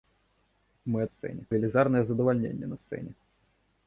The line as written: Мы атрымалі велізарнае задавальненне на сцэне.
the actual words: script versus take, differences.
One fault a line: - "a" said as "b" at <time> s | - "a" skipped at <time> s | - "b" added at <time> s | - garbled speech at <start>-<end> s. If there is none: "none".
- "атрымалі" said as "сцэне" at 1.1 s